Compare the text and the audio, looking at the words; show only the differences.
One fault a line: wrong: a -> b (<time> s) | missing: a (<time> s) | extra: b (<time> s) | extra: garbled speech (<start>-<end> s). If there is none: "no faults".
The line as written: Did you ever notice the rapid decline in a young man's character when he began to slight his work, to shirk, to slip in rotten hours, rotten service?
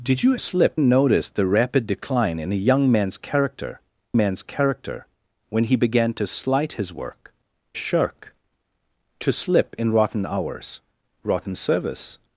wrong: ever -> slip (0.4 s)
extra: man's character (4.2 s)
missing: to (7.3 s)